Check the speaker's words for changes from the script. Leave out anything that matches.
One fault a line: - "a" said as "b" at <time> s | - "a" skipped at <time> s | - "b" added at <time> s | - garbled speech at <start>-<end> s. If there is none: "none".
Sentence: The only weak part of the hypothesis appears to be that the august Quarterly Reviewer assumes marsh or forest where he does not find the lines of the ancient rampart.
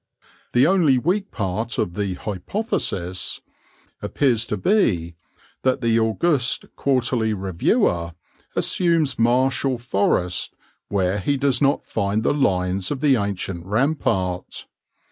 none